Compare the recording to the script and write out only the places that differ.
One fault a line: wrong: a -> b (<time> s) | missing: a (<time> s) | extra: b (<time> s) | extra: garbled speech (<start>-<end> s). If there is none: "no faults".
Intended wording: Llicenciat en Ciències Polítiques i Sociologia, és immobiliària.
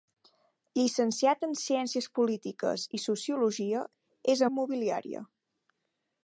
no faults